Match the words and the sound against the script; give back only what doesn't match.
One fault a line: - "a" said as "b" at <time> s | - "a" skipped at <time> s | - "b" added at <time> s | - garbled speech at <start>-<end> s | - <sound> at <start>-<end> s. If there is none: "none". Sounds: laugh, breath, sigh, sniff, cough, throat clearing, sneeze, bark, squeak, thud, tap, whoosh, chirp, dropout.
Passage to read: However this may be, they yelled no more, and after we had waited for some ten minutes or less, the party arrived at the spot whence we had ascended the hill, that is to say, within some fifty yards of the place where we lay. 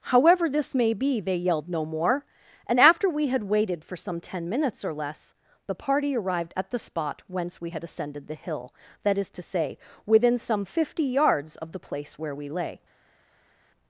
none